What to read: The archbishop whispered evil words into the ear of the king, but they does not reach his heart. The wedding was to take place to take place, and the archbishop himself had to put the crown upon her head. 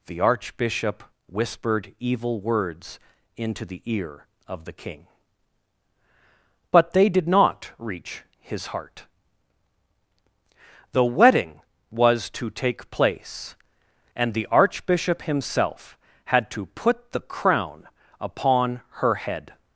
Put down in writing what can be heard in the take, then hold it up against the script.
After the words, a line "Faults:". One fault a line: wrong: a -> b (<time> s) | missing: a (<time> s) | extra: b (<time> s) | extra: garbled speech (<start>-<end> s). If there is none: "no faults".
The archbishop whispered evil words into the ear of the king, but they did not reach his heart. The wedding was to take place, and the archbishop himself had to put the crown upon her head.
Faults:
wrong: does -> did (7.1 s)
missing: to take place (13.6 s)